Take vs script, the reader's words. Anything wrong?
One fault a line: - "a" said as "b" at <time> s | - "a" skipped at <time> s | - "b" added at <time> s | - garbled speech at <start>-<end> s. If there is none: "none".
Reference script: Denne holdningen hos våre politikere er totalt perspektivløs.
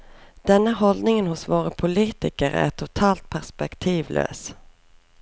none